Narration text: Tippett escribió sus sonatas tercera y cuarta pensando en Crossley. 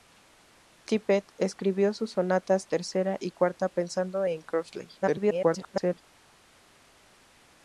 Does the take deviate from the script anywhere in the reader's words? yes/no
yes